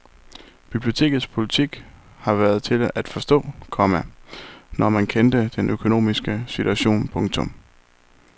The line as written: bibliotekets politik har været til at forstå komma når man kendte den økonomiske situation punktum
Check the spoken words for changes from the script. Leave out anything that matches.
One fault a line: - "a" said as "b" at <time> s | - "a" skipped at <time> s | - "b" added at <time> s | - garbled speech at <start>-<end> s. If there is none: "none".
none